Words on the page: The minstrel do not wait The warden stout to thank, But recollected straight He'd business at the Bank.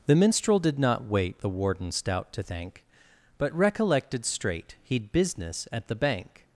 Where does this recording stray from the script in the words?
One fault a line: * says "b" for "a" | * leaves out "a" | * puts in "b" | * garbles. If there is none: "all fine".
* says "did" for "do"